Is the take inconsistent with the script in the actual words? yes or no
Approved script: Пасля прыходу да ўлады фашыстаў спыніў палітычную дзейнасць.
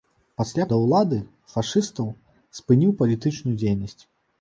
yes